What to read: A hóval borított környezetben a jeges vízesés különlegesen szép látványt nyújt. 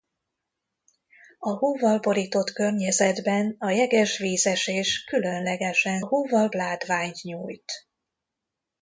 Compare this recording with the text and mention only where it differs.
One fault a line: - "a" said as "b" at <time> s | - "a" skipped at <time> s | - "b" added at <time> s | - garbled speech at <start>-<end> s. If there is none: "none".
- "szép" said as "hóval" at 6.0 s